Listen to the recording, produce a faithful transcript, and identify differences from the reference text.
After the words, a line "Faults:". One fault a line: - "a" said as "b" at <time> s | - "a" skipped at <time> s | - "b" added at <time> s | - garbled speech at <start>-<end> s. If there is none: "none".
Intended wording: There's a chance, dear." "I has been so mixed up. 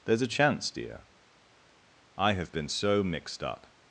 There's a chance, dear." "I have been so mixed up.
Faults:
- "has" said as "have" at 2.3 s